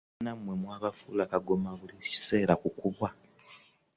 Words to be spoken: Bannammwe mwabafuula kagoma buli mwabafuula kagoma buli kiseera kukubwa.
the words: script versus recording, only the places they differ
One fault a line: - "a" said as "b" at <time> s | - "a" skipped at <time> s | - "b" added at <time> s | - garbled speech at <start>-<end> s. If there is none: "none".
- "mwabafuula kagoma buli" skipped at 2.0 s